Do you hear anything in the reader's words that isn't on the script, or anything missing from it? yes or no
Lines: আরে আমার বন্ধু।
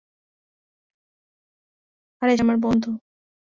no